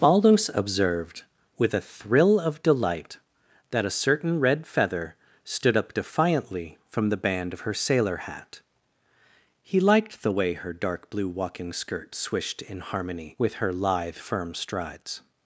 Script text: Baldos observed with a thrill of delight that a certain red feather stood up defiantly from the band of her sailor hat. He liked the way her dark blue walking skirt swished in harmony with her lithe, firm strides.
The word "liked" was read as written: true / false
true